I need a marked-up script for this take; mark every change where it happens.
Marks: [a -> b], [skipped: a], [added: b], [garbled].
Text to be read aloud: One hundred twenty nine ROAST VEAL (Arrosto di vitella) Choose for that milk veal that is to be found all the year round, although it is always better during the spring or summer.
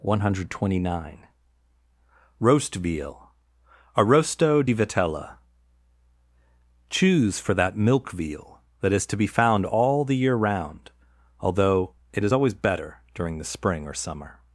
One hundred twenty nine ROAST VEAL (Arrosto di vitella) Choose for that milk veal that is to be found all the year round, although it is always better during the spring or summer.